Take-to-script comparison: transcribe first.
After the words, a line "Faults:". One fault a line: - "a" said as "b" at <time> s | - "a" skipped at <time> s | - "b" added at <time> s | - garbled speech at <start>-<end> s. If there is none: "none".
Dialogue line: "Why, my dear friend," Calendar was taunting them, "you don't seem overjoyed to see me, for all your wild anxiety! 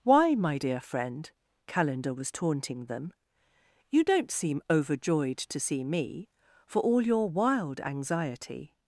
"Why, my dear friend," Calendar was taunting them, "you don't seem overjoyed to see me, for all your wild anxiety!
Faults:
none